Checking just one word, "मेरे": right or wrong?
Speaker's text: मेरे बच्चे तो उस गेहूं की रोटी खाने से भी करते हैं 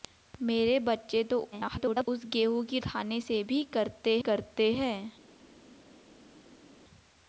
right